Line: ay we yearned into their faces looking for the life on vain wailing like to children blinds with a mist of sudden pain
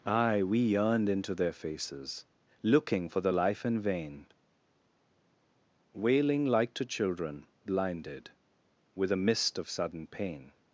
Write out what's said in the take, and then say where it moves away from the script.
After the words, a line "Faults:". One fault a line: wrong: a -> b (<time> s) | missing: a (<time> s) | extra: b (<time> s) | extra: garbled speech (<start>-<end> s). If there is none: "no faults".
ay we yearned into their faces looking for the life in vain wailing like to children blinded with a mist of sudden pain
Faults:
wrong: on -> in (3.7 s)
wrong: blinds -> blinded (7.7 s)